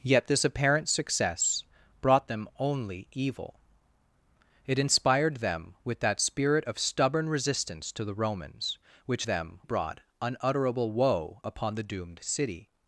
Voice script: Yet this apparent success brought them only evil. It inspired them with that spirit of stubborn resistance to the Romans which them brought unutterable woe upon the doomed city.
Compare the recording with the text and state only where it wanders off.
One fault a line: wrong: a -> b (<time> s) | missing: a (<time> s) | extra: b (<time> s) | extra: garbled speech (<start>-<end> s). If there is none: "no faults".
no faults